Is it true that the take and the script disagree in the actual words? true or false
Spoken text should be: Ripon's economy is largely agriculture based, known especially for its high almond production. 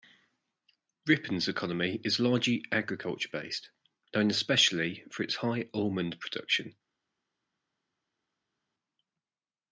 false